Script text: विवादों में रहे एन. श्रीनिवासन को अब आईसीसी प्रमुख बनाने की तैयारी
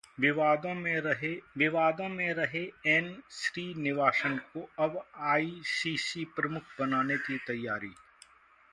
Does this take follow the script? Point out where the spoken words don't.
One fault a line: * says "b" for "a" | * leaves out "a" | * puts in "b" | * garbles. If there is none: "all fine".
* puts in "विवादों में रहे"